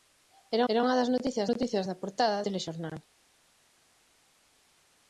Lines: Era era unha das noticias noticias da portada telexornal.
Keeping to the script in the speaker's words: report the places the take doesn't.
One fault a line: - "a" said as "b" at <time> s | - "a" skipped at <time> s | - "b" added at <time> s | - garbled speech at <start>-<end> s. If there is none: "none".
none